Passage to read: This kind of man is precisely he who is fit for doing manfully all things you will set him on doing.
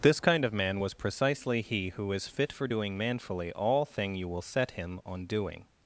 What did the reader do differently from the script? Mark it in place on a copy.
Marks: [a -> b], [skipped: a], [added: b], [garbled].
This kind of man [is -> was] precisely he who is fit for doing manfully all [things -> thing] you will set him on doing.